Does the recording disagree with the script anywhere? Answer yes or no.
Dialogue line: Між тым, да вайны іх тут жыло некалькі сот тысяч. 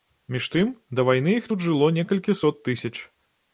no